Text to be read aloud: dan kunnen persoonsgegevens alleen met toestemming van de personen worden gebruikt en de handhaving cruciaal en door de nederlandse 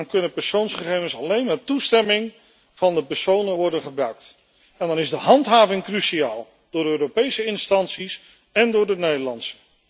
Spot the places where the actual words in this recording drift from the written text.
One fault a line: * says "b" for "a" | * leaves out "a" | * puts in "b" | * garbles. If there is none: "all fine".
* puts in "dan is"
* puts in "door europese instanties"